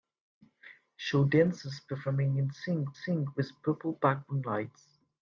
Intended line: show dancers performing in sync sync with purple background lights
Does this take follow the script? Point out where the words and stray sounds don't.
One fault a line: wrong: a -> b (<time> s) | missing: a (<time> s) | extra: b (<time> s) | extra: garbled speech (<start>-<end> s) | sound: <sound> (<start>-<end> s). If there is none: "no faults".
no faults